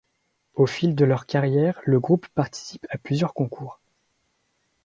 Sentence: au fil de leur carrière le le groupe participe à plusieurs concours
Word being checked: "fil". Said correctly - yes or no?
yes